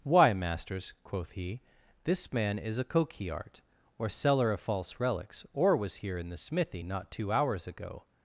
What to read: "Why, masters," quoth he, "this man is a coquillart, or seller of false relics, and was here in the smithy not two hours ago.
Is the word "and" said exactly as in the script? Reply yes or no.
no